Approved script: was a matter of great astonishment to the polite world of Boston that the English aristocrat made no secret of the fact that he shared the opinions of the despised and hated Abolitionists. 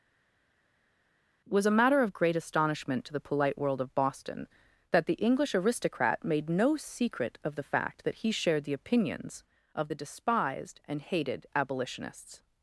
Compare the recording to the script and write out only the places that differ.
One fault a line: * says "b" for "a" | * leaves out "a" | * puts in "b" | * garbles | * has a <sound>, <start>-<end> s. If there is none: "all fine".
all fine